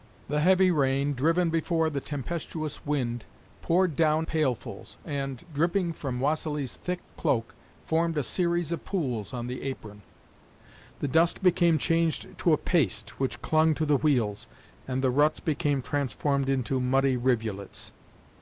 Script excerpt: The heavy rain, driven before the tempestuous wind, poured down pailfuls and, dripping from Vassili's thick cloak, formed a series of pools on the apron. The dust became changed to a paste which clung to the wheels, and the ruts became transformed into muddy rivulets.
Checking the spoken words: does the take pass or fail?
pass